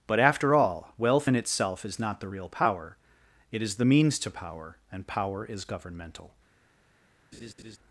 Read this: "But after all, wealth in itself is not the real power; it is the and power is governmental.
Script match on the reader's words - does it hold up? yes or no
no